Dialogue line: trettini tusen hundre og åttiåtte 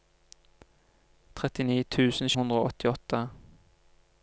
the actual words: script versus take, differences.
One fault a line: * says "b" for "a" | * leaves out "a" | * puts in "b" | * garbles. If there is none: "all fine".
all fine